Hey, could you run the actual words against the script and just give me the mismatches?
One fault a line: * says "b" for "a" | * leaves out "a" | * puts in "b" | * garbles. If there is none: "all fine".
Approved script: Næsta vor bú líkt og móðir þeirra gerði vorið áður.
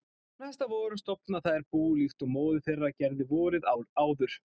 * puts in "stofna þær"